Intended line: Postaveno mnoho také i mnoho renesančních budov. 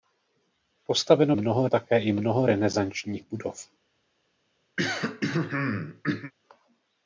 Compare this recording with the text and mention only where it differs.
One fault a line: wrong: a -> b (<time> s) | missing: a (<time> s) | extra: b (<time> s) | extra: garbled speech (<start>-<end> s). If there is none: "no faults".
no faults